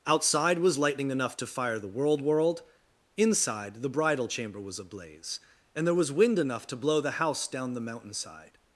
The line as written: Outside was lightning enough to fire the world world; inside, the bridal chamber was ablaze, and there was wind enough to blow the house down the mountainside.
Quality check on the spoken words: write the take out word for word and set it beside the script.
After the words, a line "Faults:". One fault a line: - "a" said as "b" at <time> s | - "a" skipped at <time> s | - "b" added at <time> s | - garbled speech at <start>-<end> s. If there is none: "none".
Outside was lightning enough to fire the world world; inside, the bridal chamber was ablaze, and there was wind enough to blow the house down the mountainside.
Faults:
none